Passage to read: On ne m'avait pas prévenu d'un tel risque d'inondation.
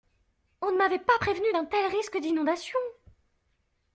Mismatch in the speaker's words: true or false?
false